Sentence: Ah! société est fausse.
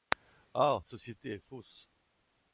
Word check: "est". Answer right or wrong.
right